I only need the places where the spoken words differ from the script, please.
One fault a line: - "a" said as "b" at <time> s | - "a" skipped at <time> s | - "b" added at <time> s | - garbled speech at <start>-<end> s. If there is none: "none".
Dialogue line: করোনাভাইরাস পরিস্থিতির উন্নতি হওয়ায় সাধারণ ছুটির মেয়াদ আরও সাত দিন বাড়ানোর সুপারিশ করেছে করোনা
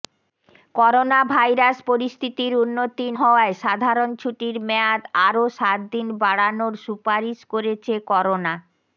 none